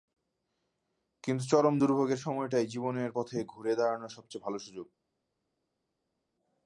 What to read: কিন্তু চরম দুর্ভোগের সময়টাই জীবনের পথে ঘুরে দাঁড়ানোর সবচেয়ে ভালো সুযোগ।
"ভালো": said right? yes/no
yes